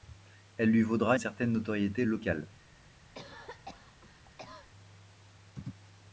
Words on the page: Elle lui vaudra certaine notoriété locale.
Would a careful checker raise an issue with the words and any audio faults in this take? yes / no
yes